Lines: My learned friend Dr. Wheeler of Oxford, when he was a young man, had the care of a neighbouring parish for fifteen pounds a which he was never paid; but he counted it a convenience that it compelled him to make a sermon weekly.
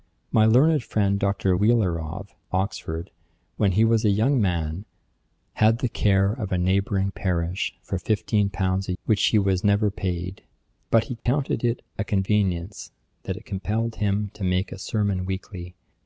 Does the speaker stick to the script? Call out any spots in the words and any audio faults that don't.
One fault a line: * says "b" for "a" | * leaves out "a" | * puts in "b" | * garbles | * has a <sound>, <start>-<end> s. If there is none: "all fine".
* has a dropout, 11.2-11.3 s